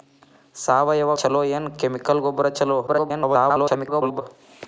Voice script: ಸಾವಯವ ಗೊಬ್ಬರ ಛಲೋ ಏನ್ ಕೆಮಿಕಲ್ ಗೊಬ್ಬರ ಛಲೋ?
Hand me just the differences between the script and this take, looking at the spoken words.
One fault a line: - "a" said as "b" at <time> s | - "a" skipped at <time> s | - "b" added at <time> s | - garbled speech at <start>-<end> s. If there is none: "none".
- "ಗೊಬ್ಬರ" skipped at 1.1 s
- garbled speech at 2.9-4.2 s